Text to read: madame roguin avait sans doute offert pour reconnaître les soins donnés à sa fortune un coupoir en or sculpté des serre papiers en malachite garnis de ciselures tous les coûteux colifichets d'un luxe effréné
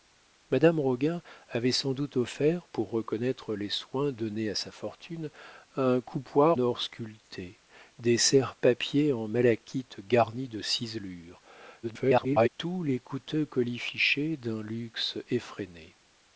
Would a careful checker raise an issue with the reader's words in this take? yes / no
yes